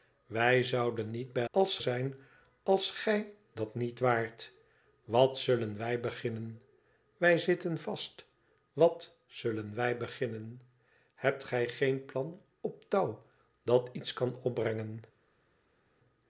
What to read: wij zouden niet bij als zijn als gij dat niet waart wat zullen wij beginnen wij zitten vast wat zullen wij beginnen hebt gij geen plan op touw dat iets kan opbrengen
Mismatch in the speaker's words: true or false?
false